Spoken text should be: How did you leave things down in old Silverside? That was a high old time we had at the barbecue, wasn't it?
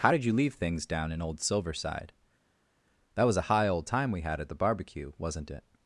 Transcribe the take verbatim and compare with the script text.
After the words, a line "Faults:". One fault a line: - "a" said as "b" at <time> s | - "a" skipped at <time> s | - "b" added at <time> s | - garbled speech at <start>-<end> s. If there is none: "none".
How did you leave things down in old Silverside? That was a high old time we had at the barbecue, wasn't it?
Faults:
none